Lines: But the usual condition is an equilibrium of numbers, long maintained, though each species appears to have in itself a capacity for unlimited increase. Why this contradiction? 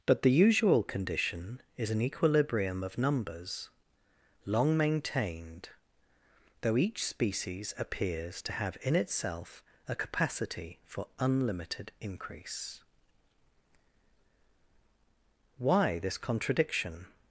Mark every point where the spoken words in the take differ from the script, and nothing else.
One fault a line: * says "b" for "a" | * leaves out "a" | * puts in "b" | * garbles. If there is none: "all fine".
all fine